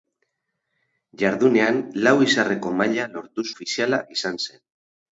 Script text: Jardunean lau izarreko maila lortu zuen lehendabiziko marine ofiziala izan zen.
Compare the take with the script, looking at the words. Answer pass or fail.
fail